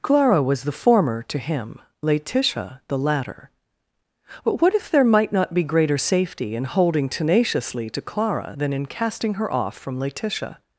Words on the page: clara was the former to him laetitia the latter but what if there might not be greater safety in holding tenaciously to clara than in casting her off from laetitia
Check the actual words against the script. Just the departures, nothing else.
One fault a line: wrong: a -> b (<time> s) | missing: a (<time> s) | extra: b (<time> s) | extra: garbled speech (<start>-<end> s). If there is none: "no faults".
no faults